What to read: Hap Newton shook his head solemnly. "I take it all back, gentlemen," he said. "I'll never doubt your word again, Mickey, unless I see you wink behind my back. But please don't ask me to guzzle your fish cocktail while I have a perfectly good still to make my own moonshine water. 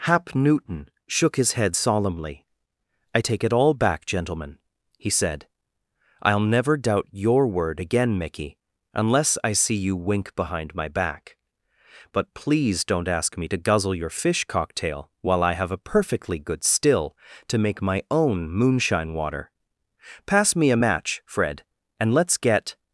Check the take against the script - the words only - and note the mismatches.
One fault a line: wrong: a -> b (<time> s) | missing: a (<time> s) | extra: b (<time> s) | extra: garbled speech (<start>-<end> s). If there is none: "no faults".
extra: Pass me a match Fred and let's get (20.3 s)